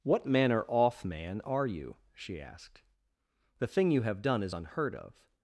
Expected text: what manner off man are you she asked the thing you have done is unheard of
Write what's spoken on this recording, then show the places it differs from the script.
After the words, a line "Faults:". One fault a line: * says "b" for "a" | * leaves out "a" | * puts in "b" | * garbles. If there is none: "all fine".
what manner off man are you she asked the thing you have done is unheard of
Faults:
all fine